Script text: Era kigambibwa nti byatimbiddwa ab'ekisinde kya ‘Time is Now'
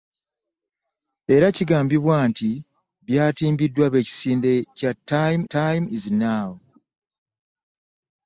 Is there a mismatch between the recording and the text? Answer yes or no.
yes